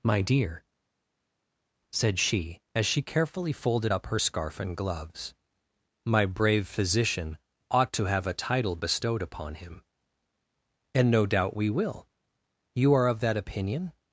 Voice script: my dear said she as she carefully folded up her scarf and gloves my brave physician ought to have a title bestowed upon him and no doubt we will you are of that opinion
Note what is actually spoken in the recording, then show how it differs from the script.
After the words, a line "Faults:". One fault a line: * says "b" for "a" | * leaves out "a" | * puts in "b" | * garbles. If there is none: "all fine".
my dear said she as she carefully folded up her scarf and gloves my brave physician ought to have a title bestowed upon him and no doubt we will you are of that opinion
Faults:
all fine